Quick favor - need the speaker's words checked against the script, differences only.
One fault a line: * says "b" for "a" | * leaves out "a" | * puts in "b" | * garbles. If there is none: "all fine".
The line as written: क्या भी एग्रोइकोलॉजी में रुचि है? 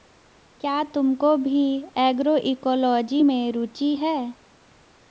* puts in "तुमको"